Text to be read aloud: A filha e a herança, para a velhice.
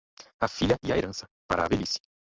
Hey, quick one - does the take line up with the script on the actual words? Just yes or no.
yes